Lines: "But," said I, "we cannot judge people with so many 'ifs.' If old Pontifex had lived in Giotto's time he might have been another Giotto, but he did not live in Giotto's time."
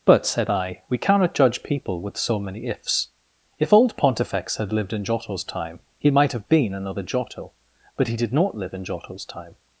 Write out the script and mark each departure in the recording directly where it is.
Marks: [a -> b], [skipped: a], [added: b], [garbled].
"But," said I, "we cannot judge people with so many 'ifs.' If old Pontifex had lived in Giotto's time he might have been another Giotto, but he did not live in Giotto's time."